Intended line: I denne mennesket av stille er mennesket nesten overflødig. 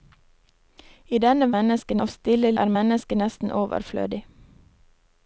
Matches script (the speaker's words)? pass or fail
pass